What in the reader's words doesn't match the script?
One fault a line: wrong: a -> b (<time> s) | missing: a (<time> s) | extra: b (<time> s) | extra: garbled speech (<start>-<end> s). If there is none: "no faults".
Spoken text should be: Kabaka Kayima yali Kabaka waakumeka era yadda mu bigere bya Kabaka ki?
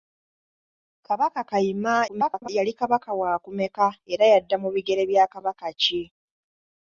extra: garbled speech (2.1-2.5 s)